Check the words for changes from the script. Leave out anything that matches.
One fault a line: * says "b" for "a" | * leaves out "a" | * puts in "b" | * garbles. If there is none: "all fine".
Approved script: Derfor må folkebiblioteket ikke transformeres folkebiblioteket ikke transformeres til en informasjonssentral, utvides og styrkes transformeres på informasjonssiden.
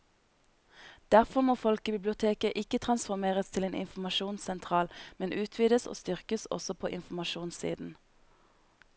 * leaves out "folkebiblioteket ikke transformeres"
* puts in "men"
* says "også" for "transformeres"